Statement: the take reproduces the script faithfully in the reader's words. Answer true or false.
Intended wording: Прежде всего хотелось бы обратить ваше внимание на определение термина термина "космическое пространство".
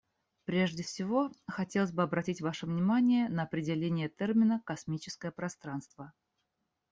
false